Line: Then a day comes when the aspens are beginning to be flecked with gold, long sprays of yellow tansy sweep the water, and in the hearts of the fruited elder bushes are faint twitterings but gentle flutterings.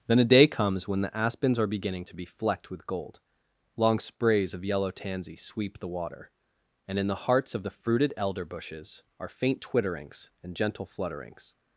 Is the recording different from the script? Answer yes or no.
yes